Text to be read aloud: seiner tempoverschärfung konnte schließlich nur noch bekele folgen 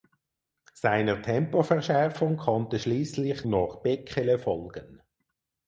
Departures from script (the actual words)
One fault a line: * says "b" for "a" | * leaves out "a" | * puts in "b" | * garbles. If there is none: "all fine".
* leaves out "nur"